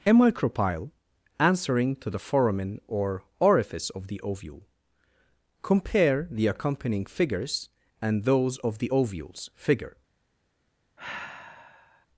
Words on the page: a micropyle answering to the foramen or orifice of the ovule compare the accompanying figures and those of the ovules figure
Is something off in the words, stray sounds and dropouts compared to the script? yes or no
yes